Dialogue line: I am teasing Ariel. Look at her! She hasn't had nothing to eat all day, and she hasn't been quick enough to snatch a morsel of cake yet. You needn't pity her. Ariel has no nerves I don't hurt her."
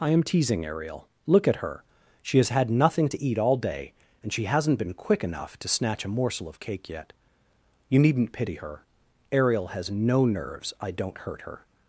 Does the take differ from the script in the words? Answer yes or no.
yes